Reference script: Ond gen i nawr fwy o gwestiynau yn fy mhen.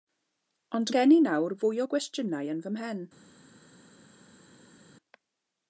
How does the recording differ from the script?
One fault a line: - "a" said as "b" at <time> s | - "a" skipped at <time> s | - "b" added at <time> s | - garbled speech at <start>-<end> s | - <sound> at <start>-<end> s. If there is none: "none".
none